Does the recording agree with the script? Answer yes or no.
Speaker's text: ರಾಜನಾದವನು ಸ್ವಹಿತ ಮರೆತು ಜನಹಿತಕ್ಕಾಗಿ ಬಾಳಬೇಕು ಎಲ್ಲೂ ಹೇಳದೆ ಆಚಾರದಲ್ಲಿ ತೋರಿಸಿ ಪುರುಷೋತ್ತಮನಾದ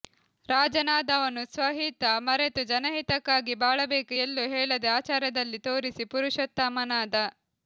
yes